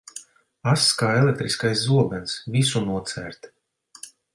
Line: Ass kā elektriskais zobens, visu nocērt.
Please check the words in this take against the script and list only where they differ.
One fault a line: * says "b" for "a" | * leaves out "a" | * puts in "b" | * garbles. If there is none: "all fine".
all fine